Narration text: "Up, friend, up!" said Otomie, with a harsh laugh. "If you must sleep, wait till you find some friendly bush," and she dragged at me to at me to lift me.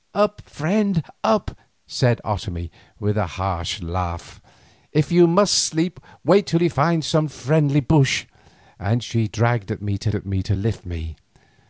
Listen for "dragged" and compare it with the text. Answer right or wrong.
right